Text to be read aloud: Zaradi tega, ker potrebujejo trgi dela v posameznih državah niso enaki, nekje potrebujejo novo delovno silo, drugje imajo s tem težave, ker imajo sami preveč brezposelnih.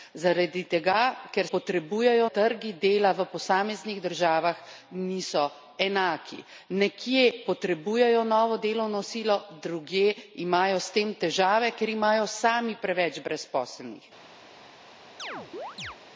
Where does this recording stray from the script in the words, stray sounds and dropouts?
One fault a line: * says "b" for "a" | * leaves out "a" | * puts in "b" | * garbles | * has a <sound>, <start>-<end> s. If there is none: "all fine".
* has a chirp, 15.2-16.0 s